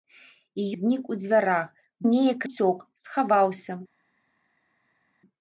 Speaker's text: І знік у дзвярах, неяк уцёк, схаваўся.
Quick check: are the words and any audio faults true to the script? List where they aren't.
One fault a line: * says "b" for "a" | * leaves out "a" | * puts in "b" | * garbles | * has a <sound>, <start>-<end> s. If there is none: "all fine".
all fine